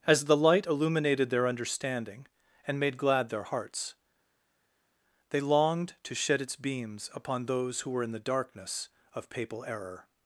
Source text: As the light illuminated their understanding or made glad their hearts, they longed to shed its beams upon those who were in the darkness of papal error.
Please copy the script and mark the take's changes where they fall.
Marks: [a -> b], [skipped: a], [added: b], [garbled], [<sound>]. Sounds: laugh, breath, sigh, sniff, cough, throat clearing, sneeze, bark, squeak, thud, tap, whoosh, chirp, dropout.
As the light illuminated their understanding [or -> and] made glad their hearts, they longed to shed its beams upon those who were in the darkness of papal error.